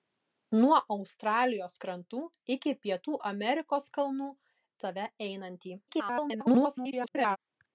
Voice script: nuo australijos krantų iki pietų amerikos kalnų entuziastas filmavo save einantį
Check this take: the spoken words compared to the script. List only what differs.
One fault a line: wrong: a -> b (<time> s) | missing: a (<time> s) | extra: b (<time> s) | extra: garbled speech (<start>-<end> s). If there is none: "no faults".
missing: entuziastas filmavo (4.3 s)
extra: garbled speech (5.9-7.4 s)